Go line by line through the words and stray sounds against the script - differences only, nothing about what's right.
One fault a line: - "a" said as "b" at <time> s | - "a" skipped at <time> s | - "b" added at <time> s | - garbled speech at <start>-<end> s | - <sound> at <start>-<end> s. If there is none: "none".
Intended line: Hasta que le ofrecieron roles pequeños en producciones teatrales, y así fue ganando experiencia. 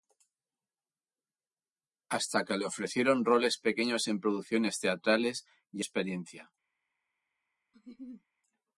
- "así fue ganando" skipped at 5.8 s
- laugh at 7.7-8.2 s